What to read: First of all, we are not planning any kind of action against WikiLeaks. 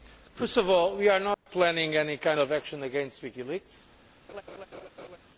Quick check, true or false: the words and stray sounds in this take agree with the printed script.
false